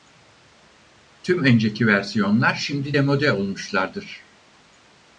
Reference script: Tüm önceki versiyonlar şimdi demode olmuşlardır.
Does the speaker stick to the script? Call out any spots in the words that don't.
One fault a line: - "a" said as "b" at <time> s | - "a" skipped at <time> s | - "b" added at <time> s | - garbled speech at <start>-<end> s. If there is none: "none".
none